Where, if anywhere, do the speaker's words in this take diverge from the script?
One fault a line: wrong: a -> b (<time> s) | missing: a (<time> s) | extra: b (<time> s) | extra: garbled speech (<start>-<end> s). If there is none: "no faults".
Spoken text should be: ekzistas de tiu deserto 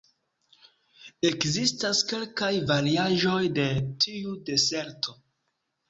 extra: kelkaj variaĵoj (2.1 s)